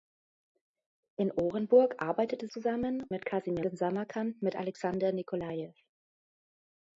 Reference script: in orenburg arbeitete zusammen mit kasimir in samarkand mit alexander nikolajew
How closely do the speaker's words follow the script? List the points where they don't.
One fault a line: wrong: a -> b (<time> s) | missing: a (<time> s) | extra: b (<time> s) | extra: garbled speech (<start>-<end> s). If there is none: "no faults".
no faults